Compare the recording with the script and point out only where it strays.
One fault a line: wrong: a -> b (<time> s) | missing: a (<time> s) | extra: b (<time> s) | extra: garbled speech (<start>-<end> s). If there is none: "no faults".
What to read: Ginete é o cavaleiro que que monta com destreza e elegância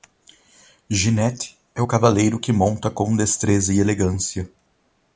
missing: que (2.5 s)